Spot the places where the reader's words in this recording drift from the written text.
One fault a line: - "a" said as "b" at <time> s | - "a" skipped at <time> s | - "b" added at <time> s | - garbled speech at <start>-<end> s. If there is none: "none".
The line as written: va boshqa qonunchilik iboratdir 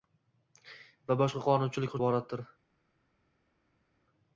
none